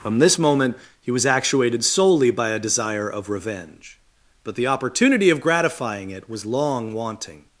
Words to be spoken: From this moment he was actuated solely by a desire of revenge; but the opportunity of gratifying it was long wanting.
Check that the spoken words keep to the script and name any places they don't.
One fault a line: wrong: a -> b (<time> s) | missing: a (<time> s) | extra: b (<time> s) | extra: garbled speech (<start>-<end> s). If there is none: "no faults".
no faults